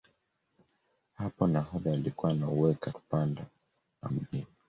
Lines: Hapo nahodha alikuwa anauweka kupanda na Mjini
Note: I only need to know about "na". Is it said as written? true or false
true